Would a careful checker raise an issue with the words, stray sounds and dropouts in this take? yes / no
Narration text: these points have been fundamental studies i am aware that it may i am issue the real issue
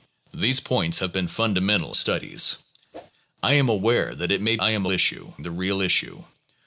yes